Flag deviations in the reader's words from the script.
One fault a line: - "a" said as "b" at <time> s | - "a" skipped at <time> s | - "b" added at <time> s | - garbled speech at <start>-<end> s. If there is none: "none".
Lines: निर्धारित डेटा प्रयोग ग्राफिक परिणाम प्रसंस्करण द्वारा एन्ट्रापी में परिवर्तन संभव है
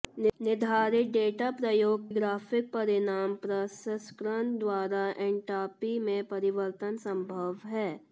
none